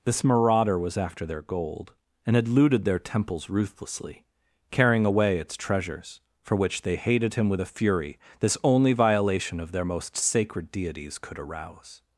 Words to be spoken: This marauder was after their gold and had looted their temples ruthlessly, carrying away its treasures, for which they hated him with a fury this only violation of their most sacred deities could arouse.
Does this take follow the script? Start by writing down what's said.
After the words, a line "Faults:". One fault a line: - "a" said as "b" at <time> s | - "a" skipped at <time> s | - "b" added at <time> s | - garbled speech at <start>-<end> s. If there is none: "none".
This marauder was after their gold and had looted their temples ruthlessly, carrying away its treasures, for which they hated him with a fury this only violation of their most sacred deities could arouse.
Faults:
none